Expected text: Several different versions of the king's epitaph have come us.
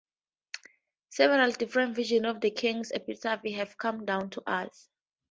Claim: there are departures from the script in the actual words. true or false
true